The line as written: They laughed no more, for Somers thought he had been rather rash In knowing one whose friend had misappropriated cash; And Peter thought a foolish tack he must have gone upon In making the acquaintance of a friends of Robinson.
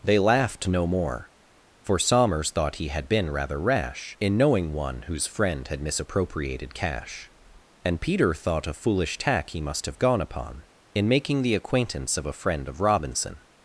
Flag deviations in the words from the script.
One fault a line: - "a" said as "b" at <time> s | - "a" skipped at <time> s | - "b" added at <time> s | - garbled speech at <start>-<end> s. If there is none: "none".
- "friends" said as "friend" at 12.4 s